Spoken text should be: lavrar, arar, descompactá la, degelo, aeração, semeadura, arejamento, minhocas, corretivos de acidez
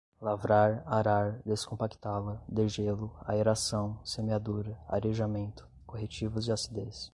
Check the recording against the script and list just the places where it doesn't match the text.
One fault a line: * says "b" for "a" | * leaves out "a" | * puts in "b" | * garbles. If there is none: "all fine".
* leaves out "minhocas"